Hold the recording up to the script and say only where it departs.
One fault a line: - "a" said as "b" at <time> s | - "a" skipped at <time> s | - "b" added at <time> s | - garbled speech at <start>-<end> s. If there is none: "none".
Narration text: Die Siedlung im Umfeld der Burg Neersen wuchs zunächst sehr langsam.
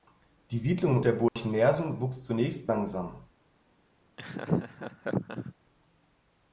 - "Umfeld" skipped at 1.0 s
- "sehr" skipped at 2.7 s